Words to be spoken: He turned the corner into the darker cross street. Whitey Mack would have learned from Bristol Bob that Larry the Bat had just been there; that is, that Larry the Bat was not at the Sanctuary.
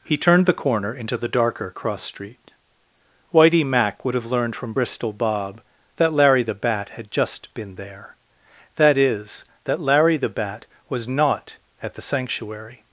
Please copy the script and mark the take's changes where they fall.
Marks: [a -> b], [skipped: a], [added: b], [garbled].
He turned the corner into the darker cross street. Whitey Mack would have learned from Bristol Bob that Larry the Bat had just been there; that is, that Larry the Bat was not at the Sanctuary.